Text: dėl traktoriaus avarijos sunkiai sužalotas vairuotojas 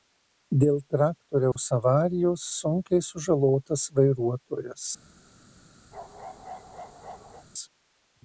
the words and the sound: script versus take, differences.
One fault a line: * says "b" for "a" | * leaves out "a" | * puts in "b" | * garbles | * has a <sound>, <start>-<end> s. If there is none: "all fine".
* has a dropout, 1.5-1.6 s
* has a bark, 5.9-7.5 s